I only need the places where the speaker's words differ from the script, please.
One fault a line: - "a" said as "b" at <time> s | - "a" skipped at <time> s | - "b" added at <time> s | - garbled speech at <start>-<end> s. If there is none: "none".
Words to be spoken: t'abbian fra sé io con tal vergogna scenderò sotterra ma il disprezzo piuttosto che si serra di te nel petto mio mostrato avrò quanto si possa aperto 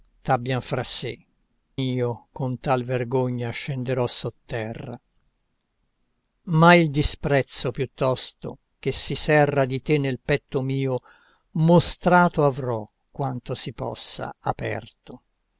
none